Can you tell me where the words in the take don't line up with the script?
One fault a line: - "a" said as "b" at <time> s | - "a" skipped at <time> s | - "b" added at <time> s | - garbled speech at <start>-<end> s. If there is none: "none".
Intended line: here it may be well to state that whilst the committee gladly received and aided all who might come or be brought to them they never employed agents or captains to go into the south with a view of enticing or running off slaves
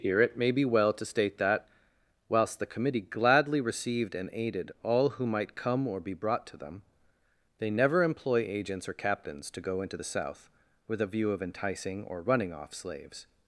- "employed" said as "employ" at 8.0 s